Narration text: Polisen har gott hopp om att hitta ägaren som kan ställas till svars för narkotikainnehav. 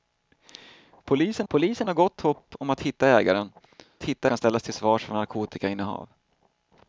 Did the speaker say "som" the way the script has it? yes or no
no